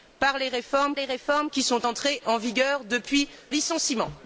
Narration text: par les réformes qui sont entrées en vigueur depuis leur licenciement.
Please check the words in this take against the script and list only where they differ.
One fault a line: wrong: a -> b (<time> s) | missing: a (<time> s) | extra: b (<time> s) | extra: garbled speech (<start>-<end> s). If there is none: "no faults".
extra: les réformes (0.9 s)
missing: leur (3.3 s)